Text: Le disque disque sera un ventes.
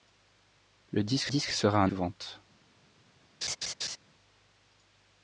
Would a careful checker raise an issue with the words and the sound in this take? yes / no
yes